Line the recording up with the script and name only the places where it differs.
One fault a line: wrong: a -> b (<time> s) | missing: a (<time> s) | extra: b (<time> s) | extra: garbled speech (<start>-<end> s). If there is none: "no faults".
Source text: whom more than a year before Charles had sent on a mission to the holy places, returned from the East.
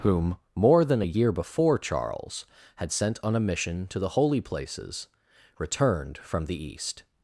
no faults